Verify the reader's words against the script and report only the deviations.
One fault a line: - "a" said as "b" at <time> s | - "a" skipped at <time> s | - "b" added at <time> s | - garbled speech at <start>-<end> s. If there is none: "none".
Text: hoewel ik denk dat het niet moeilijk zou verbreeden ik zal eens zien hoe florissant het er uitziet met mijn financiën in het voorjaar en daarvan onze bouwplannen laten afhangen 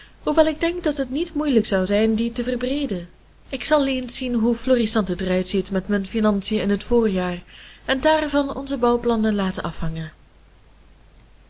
- "zijn die te" added at 1.9 s